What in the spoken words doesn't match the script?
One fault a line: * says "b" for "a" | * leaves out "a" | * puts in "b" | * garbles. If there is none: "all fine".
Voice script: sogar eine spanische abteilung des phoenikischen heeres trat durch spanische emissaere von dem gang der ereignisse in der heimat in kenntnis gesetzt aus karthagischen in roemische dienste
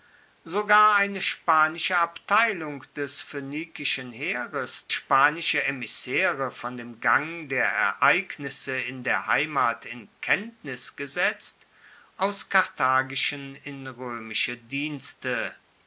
* leaves out "trat durch"